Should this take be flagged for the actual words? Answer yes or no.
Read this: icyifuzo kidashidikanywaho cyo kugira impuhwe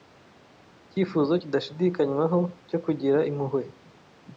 no